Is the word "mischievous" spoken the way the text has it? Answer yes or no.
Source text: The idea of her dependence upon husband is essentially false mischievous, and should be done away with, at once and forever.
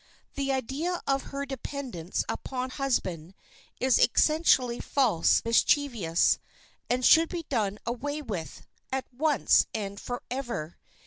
yes